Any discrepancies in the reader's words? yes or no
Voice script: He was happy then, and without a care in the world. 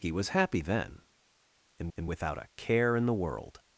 yes